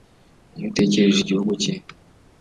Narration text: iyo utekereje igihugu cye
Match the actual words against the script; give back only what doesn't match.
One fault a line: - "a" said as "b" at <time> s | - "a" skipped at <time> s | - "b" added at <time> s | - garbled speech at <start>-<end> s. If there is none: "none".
none